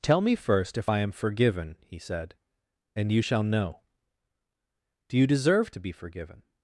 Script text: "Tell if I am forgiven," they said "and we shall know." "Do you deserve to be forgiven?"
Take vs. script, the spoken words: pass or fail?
fail